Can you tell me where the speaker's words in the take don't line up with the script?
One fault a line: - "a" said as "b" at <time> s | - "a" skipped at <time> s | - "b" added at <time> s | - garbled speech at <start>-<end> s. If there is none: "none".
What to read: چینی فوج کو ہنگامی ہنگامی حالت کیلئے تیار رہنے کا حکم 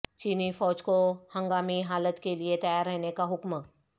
- "ہنگامی" skipped at 1.8 s